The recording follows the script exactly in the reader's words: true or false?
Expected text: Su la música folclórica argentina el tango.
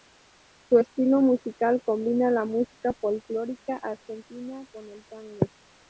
false